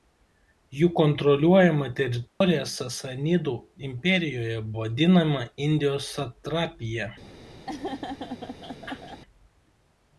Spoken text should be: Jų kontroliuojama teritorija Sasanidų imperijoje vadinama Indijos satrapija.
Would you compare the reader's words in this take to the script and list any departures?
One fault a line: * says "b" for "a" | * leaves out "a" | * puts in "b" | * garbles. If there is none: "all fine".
all fine